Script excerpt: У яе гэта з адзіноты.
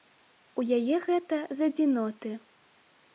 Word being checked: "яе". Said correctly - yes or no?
yes